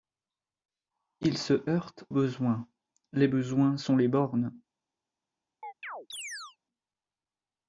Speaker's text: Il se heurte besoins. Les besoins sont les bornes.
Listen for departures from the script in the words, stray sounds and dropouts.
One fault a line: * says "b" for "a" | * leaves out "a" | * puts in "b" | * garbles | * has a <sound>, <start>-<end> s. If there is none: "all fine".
* has a chirp, 5.6-6.6 s